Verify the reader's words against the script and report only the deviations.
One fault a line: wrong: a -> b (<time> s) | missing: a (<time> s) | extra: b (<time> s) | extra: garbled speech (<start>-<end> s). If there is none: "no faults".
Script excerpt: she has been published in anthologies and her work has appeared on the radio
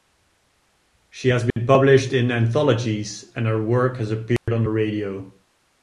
no faults